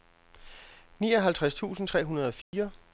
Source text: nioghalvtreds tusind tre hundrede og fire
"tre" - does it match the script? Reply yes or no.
yes